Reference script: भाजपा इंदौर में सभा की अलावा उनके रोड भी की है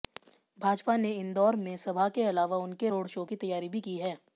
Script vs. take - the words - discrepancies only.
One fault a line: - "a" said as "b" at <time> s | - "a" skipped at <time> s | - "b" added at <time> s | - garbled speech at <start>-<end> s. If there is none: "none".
- "ने" added at 1.0 s
- "की" said as "के" at 2.1 s
- "शो की तैयारी" added at 3.1 s